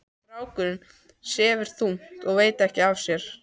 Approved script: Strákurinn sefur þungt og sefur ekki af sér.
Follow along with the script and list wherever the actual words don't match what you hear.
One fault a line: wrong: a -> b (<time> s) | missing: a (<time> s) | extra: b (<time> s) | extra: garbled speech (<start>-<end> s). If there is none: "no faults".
wrong: sefur -> veit (2.4 s)